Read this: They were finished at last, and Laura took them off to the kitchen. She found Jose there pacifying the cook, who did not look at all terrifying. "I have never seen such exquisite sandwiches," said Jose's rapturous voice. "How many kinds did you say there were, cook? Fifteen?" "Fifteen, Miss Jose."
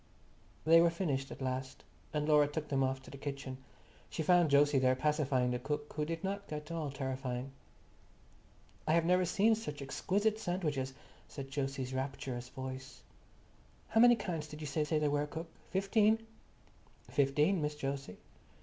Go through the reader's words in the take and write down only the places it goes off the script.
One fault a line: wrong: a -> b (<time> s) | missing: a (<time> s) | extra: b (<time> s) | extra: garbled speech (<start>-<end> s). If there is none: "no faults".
missing: look (6.5 s)
extra: say (14.8 s)